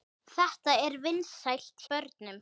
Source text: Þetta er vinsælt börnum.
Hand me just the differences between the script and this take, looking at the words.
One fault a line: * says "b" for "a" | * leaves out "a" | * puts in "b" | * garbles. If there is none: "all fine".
all fine